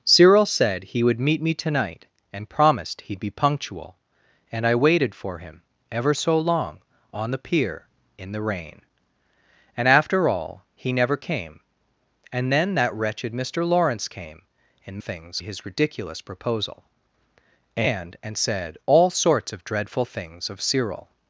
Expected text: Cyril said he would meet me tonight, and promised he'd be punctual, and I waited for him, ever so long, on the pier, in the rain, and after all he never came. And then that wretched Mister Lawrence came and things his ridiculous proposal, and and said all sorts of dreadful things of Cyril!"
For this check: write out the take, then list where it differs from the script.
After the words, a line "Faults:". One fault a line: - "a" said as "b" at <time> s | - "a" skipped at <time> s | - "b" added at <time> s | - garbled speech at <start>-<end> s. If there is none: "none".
Cyril said he would meet me tonight, and promised he'd be punctual, and I waited for him, ever so long, on the pier, in the rain, and after all he never came. And then that wretched Mister Lawrence came and things his ridiculous proposal, and and said all sorts of dreadful things of Cyril!"
Faults:
none